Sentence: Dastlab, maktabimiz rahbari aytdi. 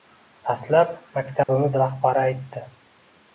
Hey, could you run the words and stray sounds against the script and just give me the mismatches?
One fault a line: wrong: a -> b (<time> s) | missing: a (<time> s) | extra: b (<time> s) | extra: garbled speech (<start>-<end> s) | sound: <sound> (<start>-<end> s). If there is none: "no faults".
sound: dropout (1.4-1.5 s)